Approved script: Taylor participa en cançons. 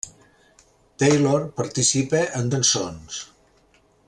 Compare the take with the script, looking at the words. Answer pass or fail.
pass